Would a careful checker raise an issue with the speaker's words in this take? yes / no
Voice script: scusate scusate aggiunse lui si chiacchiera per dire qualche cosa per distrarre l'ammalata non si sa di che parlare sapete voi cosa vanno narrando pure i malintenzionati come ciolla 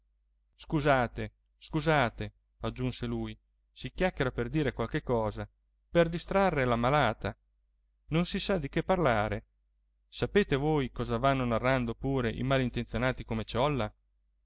no